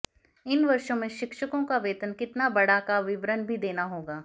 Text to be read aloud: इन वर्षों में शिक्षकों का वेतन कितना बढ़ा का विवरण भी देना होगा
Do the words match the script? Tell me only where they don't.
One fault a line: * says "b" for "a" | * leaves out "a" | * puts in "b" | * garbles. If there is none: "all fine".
all fine